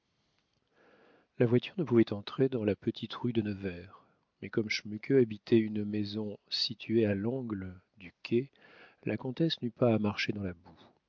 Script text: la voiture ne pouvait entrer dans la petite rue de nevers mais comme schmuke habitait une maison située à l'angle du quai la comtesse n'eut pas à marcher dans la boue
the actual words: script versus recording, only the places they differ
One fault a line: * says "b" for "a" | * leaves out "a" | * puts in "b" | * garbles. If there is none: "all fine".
all fine